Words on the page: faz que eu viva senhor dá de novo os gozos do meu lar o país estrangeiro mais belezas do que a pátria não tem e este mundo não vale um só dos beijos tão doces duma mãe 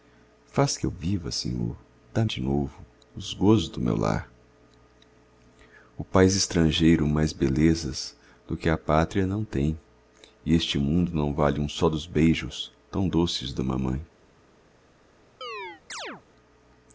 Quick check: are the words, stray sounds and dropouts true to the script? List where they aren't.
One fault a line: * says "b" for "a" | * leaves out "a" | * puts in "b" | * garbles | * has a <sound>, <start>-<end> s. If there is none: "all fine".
* has a chirp, 15.4-16.2 s